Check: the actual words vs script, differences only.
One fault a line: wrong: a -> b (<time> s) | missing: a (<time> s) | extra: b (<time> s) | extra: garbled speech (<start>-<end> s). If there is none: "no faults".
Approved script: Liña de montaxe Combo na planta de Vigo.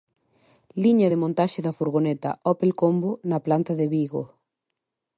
extra: da furgoneta Opel (1.7 s)